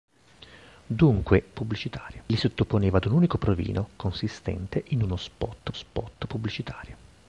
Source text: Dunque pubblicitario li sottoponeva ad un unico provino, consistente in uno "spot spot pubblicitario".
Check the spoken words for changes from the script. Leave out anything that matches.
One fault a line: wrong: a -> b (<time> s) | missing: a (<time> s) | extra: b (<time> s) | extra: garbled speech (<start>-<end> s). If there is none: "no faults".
no faults